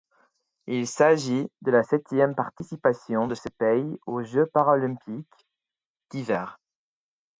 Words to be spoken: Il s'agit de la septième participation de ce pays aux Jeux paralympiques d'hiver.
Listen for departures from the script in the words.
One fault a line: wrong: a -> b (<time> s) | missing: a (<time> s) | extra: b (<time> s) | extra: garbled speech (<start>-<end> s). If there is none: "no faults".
no faults